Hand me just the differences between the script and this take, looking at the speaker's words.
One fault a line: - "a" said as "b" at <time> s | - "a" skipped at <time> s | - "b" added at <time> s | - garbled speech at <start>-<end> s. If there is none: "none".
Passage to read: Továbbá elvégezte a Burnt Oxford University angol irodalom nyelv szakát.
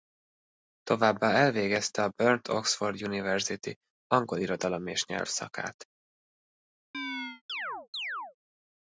- "és" added at 4.9 s